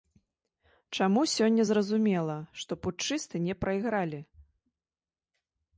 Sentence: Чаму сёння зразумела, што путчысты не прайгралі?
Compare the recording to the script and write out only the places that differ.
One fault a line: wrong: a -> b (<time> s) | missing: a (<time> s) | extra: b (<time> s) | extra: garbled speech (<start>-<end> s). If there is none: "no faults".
no faults